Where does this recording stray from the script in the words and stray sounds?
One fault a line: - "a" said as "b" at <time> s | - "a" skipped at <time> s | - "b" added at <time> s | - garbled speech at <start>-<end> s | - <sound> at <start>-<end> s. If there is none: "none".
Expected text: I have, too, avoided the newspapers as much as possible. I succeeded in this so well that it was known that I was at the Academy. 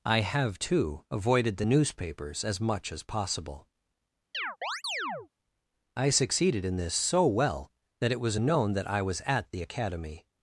- chirp at 4.3-5.3 s